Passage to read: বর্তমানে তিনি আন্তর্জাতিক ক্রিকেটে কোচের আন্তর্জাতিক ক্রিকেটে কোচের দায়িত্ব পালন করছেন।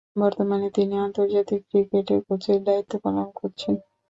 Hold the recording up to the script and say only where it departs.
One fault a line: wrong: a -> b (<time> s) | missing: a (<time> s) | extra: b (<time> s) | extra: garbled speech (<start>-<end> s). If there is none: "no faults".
missing: আন্তর্জাতিক ক্রিকেটে কোচের (2.6 s)